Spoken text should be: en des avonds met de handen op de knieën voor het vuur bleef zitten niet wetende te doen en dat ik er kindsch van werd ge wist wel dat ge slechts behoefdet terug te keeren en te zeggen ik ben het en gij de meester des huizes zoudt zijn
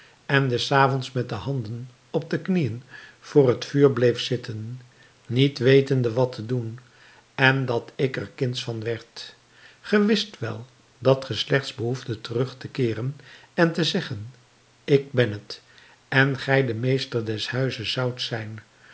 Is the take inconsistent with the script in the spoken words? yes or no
yes